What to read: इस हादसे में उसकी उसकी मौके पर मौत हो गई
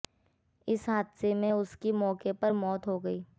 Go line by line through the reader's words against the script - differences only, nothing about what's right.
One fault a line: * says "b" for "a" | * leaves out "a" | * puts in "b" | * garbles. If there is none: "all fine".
* leaves out "उसकी"